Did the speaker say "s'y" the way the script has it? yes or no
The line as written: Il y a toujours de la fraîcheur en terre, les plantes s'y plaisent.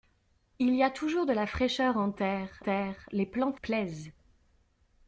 no